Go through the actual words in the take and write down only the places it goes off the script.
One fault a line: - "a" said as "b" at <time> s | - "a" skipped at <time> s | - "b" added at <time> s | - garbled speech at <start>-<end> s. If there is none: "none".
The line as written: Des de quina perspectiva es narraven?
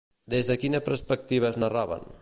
none